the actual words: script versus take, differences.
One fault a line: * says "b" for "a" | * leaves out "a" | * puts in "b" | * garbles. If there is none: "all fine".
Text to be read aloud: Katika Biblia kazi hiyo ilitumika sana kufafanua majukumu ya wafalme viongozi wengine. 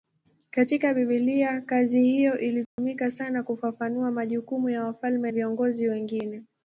all fine